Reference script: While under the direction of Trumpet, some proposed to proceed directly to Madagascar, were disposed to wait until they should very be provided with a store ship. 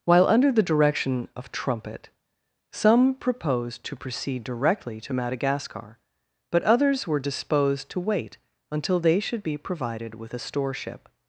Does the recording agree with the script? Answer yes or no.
no